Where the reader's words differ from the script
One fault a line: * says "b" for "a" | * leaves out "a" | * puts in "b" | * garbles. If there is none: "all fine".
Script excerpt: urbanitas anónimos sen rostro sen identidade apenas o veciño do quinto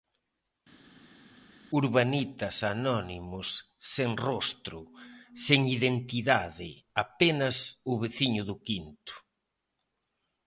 all fine